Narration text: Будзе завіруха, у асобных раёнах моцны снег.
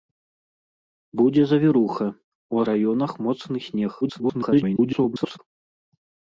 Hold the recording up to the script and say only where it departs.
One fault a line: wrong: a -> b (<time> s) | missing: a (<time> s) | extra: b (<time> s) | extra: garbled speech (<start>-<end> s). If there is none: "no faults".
missing: асобных (2.6 s)
extra: garbled speech (4.0-5.4 s)